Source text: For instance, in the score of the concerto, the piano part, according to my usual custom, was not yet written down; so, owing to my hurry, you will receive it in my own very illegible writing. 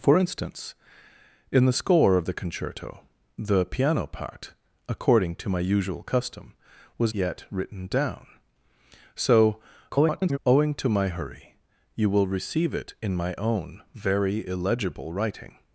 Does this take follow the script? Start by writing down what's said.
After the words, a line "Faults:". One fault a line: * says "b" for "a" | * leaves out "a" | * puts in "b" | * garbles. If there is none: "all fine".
For instance, in the score of the concerto, the piano part, according to my usual custom, was yet written down; so, [garbled] owing to my hurry, you will receive it in my own very illegible writing.
Faults:
* leaves out "not"
* garbles